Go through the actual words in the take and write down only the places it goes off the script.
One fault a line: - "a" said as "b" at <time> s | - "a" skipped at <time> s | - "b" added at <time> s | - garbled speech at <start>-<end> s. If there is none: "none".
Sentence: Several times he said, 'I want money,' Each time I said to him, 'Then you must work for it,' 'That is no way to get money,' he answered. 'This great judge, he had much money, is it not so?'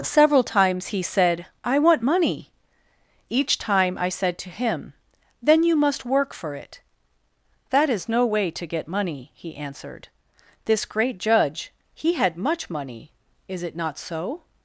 none